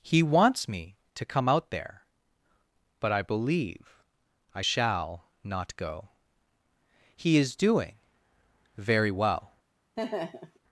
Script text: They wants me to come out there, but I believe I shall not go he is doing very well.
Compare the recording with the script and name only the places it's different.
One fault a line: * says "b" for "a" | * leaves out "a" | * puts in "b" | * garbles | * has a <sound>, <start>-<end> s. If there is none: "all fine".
* says "He" for "They"
* has a laugh, 10.0-10.6 s